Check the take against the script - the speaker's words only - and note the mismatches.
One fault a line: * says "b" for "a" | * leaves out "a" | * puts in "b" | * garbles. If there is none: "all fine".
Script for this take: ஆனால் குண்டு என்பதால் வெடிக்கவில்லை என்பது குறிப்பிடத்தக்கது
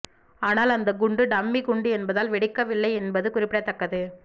* puts in "அந்த குண்டு டம்மி"